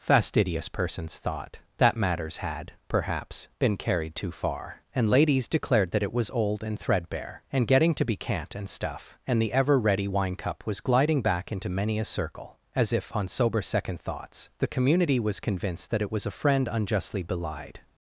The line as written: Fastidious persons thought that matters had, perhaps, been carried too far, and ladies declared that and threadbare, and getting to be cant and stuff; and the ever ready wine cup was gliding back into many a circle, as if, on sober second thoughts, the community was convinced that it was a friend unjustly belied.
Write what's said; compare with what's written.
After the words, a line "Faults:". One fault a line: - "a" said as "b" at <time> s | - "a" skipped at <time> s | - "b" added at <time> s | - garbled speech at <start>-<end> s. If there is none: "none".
Fastidious persons thought that matters had, perhaps, been carried too far, and ladies declared that it was old and threadbare, and getting to be cant and stuff; and the ever ready wine cup was gliding back into many a circle, as if, on sober second thoughts, the community was convinced that it was a friend unjustly belied.
Faults:
- "it was old" added at 6.0 s